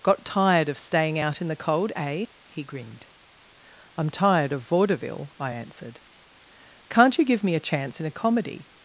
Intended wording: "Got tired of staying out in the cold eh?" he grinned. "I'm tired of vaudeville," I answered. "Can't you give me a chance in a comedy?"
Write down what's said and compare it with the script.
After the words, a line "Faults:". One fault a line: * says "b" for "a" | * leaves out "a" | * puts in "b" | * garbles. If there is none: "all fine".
"Got tired of staying out in the cold eh?" he grinned. "I'm tired of vaudeville," I answered. "Can't you give me a chance in a comedy?"
Faults:
all fine